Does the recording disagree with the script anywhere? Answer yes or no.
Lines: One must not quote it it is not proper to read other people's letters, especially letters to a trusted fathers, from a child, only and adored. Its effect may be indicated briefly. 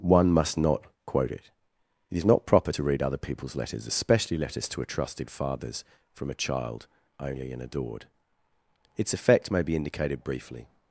no